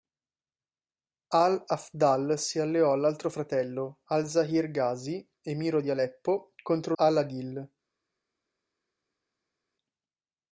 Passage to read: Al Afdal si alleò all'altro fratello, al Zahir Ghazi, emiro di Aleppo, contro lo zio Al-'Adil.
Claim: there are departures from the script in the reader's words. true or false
true